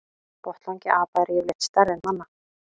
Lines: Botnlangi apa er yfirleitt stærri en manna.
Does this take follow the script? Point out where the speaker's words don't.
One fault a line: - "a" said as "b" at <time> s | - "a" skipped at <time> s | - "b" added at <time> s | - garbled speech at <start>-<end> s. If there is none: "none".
none